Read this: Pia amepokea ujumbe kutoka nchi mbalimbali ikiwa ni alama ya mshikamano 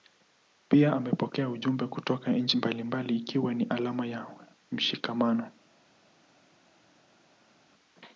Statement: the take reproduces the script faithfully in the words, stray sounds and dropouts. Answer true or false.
true